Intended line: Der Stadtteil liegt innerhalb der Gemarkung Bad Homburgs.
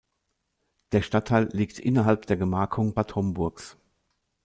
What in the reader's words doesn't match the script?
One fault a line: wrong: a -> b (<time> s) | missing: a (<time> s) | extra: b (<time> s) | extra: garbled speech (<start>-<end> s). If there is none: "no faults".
no faults